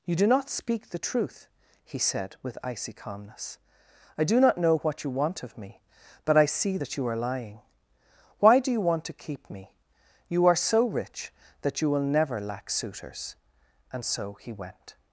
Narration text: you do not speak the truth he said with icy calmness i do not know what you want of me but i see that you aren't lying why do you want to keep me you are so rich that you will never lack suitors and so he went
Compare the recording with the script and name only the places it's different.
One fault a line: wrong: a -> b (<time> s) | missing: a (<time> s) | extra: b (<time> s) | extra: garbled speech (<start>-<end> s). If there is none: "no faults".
wrong: aren't -> are (7.1 s)